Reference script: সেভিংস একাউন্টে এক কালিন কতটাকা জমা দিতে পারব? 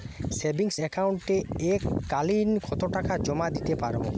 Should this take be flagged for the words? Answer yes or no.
no